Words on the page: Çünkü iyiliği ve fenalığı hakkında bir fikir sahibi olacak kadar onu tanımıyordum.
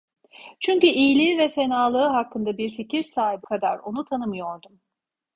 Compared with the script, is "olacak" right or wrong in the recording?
wrong